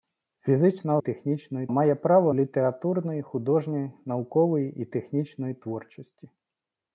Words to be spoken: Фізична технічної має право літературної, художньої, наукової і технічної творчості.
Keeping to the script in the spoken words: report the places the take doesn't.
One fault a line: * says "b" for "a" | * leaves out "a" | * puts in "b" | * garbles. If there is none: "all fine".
all fine